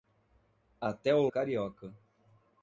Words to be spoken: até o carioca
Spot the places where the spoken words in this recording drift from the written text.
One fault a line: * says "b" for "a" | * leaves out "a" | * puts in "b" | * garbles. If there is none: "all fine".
all fine